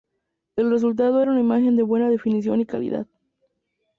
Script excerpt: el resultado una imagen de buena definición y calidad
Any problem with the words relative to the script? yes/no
yes